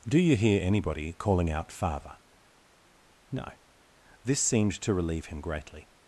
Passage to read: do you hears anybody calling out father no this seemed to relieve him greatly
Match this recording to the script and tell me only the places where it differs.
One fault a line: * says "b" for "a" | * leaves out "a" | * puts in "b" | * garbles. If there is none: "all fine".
* says "hear" for "hears"